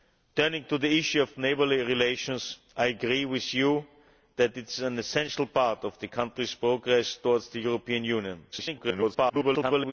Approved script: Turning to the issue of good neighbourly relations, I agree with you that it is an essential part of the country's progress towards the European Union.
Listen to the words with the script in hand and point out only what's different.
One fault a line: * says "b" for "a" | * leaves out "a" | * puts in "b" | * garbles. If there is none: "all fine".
* leaves out "good"
* garbles